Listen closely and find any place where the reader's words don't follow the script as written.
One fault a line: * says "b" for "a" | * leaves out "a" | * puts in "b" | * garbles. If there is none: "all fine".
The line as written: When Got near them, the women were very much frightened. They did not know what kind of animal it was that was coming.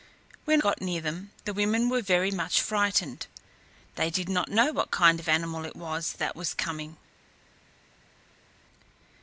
all fine